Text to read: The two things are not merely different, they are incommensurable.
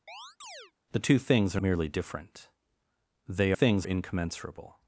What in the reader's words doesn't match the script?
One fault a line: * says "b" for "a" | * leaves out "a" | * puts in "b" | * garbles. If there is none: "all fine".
* leaves out "not"
* says "things" for "are"